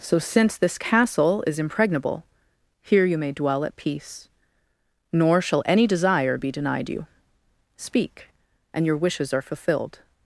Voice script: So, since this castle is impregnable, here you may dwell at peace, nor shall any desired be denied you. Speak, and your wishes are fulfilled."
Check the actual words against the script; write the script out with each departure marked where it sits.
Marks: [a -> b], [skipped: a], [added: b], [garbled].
So, since this castle is impregnable, here you may dwell at peace, nor shall any [desired -> desire] be denied you. Speak, and your wishes are fulfilled."